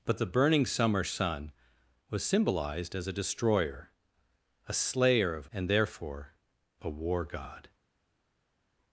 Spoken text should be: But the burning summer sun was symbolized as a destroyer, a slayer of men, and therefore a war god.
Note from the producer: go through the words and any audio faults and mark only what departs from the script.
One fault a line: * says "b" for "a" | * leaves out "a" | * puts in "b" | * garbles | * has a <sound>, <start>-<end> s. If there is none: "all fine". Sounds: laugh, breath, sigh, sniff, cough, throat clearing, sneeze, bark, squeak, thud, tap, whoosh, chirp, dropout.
* leaves out "men"